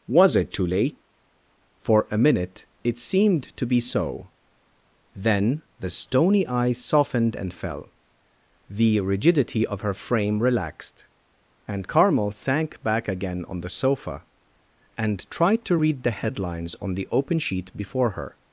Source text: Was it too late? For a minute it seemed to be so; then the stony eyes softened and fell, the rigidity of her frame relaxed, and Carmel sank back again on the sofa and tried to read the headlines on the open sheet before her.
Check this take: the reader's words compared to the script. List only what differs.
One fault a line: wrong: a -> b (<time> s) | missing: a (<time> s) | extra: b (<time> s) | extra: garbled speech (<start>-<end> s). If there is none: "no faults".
no faults